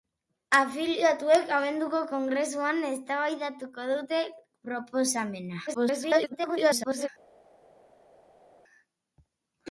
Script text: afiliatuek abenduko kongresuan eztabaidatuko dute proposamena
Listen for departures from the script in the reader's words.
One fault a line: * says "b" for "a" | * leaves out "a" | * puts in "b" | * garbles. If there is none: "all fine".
* garbles